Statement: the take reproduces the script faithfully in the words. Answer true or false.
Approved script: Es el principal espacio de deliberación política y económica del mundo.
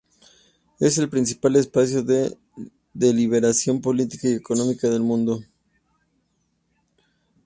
true